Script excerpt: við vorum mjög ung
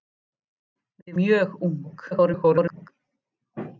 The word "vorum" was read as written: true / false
false